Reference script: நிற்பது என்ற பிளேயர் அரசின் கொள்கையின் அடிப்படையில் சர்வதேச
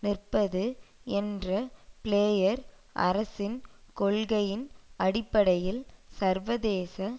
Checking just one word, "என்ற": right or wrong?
right